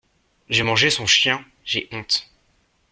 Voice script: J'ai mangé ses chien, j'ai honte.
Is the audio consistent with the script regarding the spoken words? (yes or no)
no